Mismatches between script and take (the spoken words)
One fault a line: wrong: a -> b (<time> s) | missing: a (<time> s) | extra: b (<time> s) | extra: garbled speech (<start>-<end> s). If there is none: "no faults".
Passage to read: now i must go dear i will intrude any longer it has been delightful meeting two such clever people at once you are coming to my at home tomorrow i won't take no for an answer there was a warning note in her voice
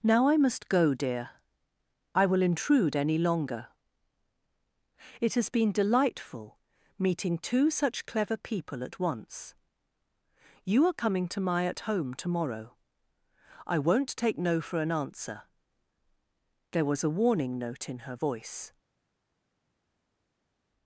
no faults